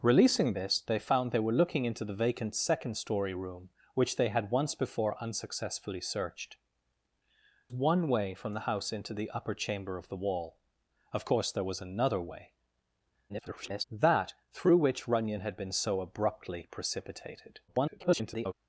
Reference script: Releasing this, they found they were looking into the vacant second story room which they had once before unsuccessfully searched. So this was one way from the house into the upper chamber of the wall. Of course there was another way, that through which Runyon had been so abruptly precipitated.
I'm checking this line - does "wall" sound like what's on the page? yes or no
yes